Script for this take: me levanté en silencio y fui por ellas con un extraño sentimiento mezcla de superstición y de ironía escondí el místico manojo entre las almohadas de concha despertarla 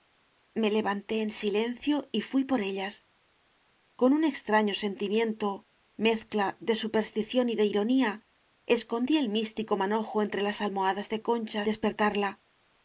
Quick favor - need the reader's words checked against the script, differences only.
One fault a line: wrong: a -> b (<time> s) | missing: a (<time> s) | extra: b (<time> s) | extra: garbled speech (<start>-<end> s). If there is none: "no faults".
no faults